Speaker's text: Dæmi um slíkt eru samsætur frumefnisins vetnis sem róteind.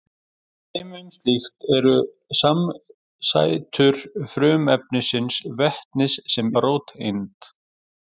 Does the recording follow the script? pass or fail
pass